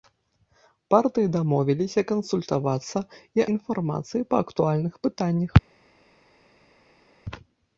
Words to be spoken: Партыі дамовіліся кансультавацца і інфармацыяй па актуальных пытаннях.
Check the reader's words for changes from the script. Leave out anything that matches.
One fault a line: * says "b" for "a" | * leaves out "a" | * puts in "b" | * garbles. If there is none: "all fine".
all fine